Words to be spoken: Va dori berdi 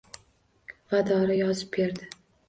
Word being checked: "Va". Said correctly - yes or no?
yes